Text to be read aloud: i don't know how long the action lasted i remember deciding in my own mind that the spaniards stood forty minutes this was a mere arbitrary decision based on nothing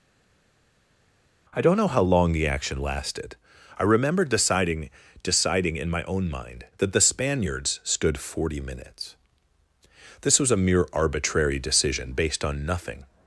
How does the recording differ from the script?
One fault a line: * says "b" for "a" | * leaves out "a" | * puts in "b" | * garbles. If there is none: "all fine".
* puts in "deciding"